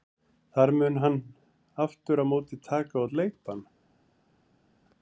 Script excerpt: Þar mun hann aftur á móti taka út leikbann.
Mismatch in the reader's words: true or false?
false